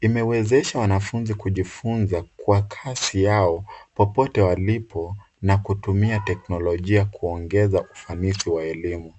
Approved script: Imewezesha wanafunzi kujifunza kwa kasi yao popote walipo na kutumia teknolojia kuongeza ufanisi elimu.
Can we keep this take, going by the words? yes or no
no